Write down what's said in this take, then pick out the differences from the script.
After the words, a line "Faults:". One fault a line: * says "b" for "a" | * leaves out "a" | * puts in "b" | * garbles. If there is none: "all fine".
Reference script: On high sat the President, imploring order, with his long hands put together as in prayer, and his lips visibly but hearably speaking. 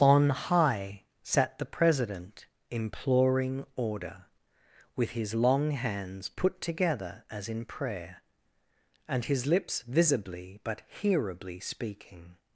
On high sat the President, imploring order, with his long hands put together as in prayer, and his lips visibly but hearably speaking.
Faults:
all fine